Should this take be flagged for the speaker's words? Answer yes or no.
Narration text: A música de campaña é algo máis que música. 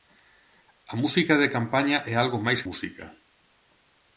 yes